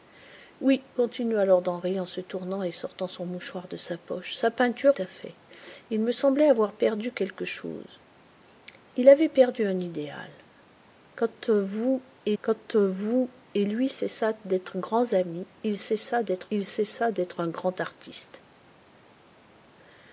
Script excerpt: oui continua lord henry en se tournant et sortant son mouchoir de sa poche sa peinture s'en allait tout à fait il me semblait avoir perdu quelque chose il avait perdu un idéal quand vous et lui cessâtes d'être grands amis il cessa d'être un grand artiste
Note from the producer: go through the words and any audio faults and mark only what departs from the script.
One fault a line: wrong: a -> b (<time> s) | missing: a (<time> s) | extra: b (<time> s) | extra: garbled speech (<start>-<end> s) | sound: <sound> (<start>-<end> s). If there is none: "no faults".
missing: s'en allait tout (5.0 s)
extra: quand vous et (12.4 s)
extra: il cessa d'être (16.5 s)